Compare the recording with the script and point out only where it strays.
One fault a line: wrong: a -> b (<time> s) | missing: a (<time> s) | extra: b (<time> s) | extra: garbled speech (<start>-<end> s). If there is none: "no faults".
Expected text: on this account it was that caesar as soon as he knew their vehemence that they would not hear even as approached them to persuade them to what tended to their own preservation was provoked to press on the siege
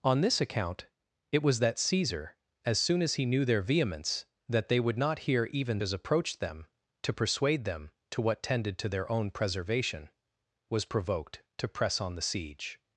no faults